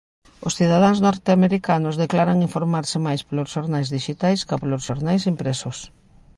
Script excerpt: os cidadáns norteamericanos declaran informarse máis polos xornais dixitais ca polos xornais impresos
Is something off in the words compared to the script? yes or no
no